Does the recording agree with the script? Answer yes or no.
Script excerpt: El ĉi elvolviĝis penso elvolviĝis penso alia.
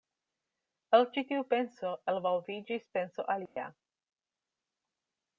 no